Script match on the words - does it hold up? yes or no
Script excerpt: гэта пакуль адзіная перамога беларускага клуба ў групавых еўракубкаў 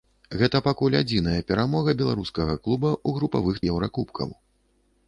yes